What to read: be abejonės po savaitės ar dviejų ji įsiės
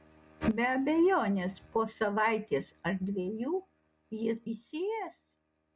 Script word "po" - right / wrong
right